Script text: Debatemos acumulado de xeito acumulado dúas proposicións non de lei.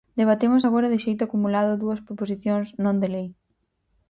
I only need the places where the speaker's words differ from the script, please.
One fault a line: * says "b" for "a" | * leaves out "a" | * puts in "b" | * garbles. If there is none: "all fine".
* says "agora" for "acumulado"